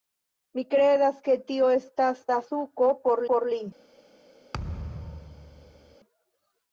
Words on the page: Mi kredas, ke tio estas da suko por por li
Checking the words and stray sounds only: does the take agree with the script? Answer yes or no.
no